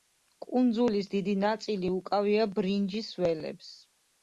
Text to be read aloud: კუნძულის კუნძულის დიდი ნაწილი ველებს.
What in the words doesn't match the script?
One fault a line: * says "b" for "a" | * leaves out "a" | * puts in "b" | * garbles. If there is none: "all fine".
* leaves out "კუნძულის"
* puts in "უკავია ბრინჯის"